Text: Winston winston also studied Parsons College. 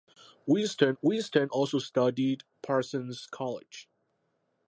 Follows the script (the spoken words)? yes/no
yes